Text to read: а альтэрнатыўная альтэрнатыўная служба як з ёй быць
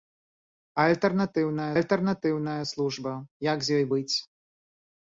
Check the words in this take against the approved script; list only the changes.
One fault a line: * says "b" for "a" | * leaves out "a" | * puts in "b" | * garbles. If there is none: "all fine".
all fine